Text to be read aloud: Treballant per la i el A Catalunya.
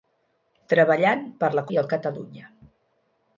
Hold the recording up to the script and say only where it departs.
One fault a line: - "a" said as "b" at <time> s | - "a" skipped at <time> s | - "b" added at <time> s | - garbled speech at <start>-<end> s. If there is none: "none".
none